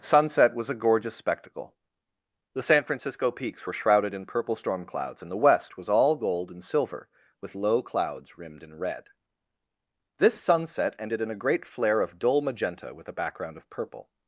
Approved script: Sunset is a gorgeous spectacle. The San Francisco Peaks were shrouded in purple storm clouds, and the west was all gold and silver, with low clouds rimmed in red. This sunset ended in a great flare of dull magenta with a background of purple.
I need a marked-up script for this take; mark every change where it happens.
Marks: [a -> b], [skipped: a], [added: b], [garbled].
Sunset [is -> was] a gorgeous spectacle. The San Francisco Peaks were shrouded in purple storm clouds, and the west was all gold and silver, with low clouds rimmed in red. This sunset ended in a great flare of dull magenta with a background of purple.